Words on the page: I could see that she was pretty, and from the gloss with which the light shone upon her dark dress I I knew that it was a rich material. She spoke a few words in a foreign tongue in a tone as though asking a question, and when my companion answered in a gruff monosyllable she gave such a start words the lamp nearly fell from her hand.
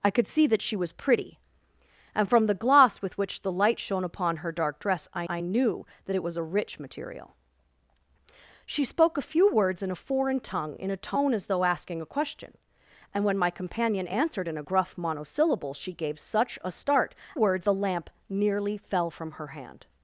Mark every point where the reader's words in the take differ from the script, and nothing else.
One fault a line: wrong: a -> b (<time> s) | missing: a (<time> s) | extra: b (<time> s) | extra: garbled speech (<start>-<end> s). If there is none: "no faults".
no faults